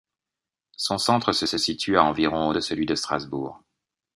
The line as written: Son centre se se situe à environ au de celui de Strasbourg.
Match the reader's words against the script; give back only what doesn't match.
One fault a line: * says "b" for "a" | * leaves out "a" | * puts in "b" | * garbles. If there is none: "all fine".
all fine